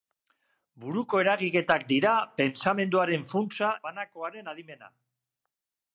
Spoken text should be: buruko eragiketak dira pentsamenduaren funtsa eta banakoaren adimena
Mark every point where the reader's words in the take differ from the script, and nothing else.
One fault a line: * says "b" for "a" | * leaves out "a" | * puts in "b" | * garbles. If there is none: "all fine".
* leaves out "eta"